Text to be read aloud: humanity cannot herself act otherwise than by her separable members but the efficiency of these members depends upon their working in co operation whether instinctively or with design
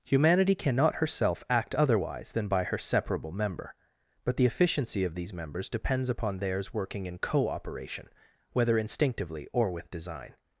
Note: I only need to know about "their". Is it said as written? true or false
false